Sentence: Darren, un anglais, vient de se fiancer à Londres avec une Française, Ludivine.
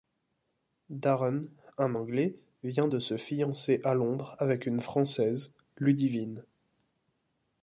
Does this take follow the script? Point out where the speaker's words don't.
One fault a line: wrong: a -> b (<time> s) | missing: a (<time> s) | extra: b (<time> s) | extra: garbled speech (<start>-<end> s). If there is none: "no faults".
no faults